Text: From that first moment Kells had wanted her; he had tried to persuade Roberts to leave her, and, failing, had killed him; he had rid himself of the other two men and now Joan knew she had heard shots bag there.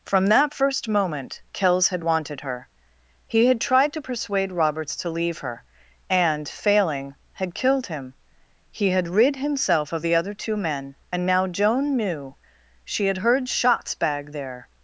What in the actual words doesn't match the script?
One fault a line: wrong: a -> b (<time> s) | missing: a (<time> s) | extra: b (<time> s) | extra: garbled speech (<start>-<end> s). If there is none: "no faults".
no faults